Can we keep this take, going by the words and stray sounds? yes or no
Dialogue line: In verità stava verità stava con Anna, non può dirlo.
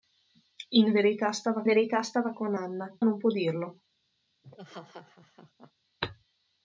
no